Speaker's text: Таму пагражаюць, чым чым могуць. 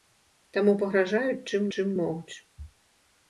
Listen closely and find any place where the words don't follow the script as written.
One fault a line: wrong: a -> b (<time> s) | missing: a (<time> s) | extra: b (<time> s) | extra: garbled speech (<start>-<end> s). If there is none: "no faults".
no faults